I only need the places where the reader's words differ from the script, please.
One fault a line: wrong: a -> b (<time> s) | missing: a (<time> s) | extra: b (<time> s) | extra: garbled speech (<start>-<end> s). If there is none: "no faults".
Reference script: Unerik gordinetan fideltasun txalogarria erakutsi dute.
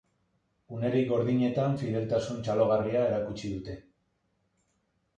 no faults